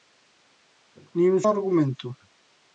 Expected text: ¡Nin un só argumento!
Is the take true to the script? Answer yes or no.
no